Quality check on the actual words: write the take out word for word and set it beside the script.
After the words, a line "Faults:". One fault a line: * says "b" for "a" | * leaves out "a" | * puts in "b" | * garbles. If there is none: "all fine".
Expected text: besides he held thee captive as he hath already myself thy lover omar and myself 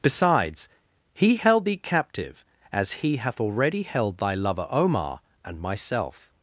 besides he held thee captive as he hath already held thy lover omar and myself
Faults:
* says "held" for "myself"